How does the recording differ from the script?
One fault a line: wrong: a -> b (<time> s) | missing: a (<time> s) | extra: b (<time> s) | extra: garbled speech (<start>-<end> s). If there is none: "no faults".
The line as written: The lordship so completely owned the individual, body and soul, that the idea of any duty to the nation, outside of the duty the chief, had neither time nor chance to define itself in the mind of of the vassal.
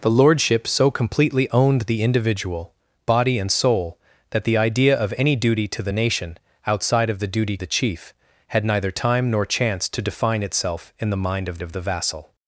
no faults